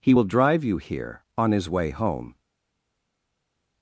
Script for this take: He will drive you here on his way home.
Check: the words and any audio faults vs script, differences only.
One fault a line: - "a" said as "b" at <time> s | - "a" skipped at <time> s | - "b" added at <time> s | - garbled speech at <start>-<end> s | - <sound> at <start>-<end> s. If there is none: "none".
none